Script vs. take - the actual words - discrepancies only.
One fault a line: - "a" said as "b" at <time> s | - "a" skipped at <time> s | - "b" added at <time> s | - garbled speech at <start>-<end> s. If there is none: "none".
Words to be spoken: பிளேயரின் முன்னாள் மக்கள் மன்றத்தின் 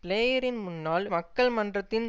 none